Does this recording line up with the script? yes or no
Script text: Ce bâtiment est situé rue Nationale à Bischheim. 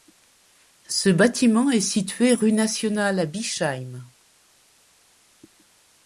yes